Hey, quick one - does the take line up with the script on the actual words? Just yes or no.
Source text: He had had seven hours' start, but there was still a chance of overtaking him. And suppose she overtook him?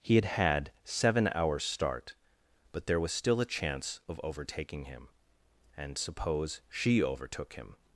yes